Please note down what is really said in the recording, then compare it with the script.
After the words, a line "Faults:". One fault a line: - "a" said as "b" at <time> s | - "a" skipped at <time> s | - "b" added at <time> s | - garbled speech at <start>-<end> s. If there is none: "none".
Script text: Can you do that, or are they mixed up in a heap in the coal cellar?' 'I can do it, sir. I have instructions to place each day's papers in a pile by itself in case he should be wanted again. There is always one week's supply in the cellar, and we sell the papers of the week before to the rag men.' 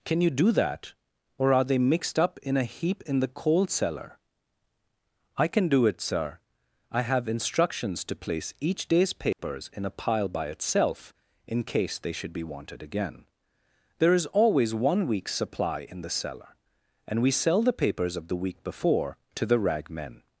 Can you do that, or are they mixed up in a heap in the coal cellar?' 'I can do it, sir. I have instructions to place each day's papers in a pile by itself in case they should be wanted again. There is always one week's supply in the cellar, and we sell the papers of the week before to the rag men.'
Faults:
- "he" said as "they" at 12.0 s